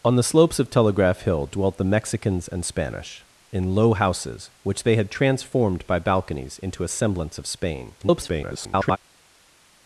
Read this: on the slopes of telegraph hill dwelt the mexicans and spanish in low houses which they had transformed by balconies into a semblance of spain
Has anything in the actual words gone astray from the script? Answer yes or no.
yes